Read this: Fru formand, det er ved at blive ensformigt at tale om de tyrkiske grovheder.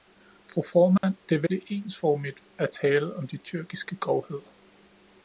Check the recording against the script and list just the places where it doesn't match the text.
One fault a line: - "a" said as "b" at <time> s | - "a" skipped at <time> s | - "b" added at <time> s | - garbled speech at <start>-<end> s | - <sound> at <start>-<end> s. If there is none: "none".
- dropout at 1.0-1.0 s
- "at" skipped at 1.5 s